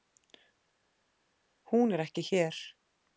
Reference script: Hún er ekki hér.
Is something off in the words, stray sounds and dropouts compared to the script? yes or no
no